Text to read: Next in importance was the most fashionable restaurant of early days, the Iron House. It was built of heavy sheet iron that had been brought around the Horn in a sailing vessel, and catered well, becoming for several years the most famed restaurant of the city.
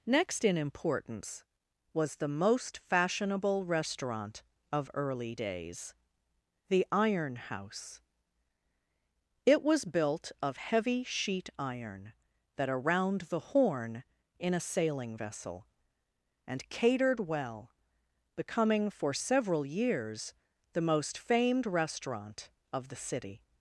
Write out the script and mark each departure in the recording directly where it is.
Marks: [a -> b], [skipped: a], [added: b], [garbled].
Next in importance was the most fashionable restaurant of early days, the Iron House. It was built of heavy sheet iron that [skipped: had been brought] around the Horn in a sailing vessel, and catered well, becoming for several years the most famed restaurant of the city.